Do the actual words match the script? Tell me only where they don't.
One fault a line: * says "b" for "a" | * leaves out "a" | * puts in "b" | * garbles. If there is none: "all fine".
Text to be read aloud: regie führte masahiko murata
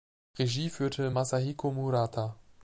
all fine